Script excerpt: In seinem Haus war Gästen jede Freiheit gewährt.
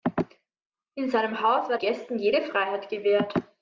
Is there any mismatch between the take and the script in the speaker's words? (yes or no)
no